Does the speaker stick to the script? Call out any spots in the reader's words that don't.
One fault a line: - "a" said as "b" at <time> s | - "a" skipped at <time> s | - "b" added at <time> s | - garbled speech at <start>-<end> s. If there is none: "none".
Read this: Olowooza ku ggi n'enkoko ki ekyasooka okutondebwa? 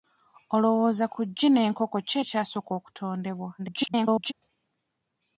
- garbled speech at 3.6-4.3 s